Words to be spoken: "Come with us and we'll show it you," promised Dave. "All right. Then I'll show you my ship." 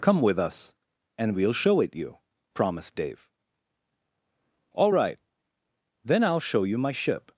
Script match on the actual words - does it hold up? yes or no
yes